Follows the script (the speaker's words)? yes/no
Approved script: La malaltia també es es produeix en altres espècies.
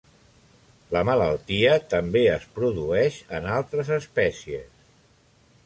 no